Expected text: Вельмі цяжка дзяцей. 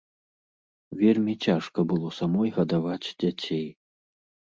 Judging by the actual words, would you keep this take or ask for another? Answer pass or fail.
fail